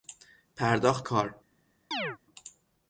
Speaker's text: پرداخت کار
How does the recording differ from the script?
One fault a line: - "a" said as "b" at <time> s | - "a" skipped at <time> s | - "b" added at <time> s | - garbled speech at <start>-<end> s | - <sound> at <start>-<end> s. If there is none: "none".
- chirp at 1.9-2.2 s